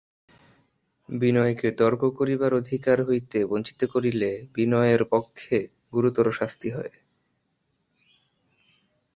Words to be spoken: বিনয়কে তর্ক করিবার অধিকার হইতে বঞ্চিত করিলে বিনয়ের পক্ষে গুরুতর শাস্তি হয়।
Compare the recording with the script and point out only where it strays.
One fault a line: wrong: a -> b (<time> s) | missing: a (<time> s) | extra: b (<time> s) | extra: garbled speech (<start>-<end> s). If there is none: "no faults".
no faults